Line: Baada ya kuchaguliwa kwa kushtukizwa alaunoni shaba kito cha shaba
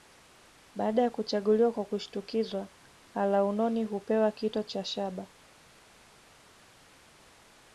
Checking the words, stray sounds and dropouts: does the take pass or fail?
fail